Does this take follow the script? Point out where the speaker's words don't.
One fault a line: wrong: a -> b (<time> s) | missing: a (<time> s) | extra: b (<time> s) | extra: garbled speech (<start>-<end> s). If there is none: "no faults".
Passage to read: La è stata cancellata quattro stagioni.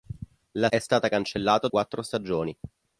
no faults